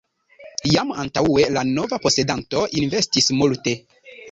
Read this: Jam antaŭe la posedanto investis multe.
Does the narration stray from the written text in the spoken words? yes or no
yes